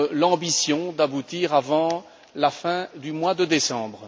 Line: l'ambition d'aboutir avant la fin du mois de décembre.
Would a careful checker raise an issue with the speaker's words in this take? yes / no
no